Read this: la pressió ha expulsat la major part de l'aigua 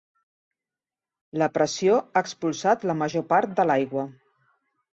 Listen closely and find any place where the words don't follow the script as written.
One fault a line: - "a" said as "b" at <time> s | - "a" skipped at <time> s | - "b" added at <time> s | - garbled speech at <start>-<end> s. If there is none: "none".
none